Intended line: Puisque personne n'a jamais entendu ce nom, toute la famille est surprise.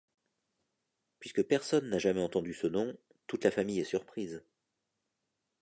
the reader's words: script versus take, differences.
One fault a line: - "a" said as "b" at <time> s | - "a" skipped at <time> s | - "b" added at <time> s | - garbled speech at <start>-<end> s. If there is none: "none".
none